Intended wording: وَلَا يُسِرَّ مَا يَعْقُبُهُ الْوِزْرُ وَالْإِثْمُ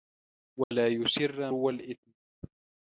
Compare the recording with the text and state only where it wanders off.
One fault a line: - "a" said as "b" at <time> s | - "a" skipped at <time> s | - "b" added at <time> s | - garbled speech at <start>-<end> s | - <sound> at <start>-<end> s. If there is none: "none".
- dropout at 0.6-0.7 s
- "مَا يَعْقُبُهُ الْوِزْرُ" skipped at 1.5 s